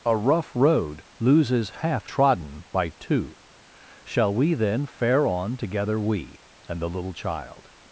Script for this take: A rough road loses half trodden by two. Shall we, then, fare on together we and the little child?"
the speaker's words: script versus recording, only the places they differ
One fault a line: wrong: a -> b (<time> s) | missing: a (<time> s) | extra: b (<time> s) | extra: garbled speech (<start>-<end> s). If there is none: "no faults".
no faults